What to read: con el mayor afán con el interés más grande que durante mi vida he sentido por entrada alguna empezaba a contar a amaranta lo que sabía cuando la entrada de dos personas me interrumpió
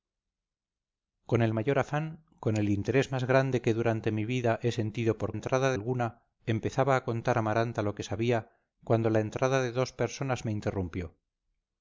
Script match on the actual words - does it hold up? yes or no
yes